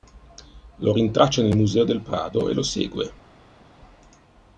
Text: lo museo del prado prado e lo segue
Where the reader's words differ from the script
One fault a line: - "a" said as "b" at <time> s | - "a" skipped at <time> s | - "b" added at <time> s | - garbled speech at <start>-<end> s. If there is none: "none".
- "rintraccia nel" added at 0.9 s
- "prado" skipped at 2.5 s